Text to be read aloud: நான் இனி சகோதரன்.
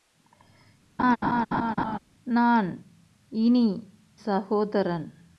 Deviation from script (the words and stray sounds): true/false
true